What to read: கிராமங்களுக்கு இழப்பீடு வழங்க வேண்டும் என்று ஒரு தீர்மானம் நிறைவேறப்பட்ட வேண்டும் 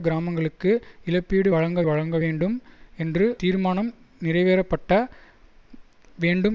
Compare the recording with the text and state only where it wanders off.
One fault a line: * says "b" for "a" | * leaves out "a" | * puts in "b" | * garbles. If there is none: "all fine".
* puts in "வழங்க"
* leaves out "ஒரு"